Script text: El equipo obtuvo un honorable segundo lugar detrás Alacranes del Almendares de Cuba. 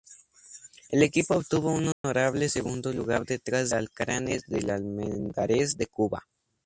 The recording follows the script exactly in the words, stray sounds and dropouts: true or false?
false